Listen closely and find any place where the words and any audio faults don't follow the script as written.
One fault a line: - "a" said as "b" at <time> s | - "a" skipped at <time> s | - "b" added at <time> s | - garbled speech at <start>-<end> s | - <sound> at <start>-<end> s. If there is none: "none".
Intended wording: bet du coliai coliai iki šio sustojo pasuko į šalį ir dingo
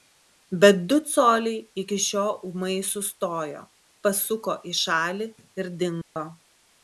- "coliai" skipped at 1.6 s
- "ūmai" added at 2.5 s
- dropout at 6.0-6.2 s